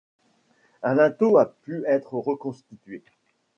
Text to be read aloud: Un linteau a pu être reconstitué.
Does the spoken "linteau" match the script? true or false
true